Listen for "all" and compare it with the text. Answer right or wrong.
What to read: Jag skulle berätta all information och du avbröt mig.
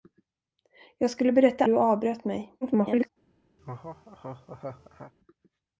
wrong